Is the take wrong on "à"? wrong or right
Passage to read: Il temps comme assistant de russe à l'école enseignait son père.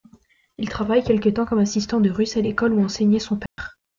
right